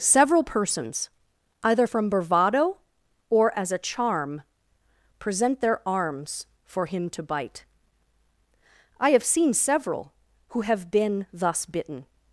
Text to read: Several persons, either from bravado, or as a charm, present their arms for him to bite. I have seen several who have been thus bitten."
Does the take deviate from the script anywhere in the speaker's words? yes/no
no